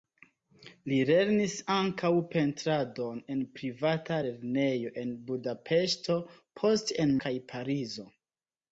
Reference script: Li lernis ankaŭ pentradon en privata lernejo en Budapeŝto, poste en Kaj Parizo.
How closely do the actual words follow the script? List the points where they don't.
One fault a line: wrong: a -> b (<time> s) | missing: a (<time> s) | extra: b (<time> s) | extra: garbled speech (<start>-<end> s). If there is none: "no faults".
no faults